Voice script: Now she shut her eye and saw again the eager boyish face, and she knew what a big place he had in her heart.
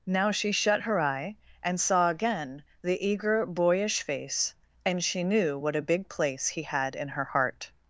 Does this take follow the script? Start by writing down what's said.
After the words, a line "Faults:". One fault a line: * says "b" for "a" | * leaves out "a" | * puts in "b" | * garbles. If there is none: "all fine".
Now she shut her eye and saw again the eager boyish face, and she knew what a big place he had in her heart.
Faults:
all fine